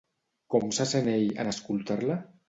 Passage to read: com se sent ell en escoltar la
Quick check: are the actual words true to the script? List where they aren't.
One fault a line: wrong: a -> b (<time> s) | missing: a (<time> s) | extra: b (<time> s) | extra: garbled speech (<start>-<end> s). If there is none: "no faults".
no faults